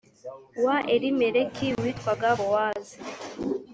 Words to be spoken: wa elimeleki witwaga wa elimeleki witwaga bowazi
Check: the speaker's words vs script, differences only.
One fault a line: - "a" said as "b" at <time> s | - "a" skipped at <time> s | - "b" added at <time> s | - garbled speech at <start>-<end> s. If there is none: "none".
- "wa elimeleki witwaga" skipped at 2.3 s